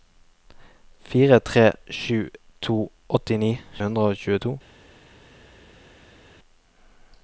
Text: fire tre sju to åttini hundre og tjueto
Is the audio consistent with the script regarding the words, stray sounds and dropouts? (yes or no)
yes